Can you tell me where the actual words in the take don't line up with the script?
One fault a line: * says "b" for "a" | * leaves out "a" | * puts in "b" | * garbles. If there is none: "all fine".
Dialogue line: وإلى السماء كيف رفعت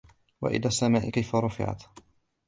all fine